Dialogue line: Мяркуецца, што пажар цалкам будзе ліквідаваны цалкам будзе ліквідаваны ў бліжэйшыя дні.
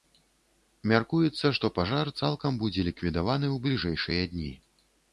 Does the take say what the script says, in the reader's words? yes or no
no